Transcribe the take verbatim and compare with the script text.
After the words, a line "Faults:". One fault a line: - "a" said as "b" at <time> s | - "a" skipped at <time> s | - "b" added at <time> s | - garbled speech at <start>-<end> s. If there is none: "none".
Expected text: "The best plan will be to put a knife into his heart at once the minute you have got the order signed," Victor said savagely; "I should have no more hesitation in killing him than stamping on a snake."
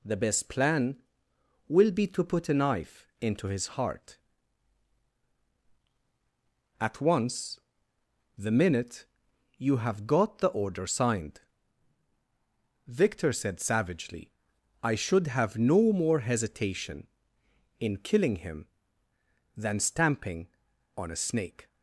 "The best plan will be to put a knife into his heart at once the minute you have got the order signed," Victor said savagely; "I should have no more hesitation in killing him than stamping on a snake."
Faults:
none